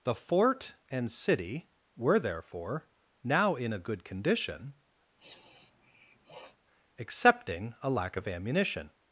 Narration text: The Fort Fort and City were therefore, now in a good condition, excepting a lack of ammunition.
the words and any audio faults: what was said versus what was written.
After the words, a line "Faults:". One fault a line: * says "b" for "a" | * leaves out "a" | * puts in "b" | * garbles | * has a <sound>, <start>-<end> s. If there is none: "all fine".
The Fort and City were therefore, now in a good condition, excepting a lack of ammunition.
Faults:
* leaves out "Fort"
* has a sniff, 5.2-6.6 s